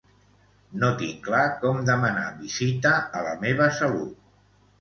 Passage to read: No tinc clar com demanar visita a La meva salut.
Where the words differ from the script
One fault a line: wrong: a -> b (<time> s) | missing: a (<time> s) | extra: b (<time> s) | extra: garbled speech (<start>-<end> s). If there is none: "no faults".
no faults